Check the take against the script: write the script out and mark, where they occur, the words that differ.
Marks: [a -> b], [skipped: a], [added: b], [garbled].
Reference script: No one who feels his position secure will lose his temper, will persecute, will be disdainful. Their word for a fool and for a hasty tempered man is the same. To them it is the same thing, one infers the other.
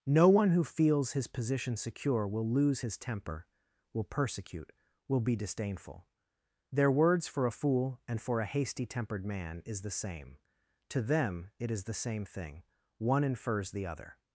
No one who feels his position secure will lose his temper, will persecute, will be disdainful. Their [word -> words] for a fool and for a hasty tempered man is the same. To them it is the same thing, one infers the other.